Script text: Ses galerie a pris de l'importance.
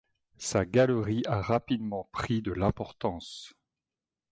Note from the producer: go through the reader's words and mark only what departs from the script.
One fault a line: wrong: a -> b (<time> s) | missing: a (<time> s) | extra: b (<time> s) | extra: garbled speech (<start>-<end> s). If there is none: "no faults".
wrong: Ses -> Sa (0.4 s)
extra: rapidement (1.4 s)